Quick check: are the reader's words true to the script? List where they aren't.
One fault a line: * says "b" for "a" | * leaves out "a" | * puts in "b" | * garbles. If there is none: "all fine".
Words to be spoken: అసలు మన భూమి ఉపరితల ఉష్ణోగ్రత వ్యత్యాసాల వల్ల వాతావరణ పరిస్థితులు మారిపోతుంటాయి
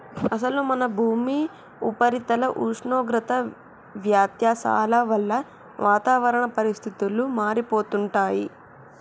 all fine